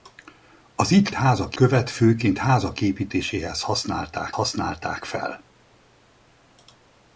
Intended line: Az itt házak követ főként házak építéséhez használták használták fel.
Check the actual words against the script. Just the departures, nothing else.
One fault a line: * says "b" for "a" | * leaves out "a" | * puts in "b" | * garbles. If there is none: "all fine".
all fine